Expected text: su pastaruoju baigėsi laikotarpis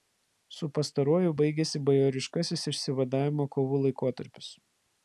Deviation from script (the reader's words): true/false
true